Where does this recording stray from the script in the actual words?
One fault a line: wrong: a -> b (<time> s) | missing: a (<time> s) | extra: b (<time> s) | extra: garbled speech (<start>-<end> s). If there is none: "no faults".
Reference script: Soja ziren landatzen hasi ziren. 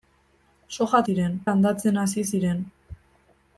no faults